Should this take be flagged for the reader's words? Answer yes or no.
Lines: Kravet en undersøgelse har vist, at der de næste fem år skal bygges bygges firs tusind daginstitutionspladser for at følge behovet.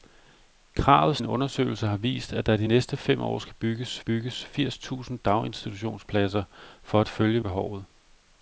no